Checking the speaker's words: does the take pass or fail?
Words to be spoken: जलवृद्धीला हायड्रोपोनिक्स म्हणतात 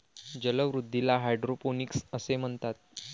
fail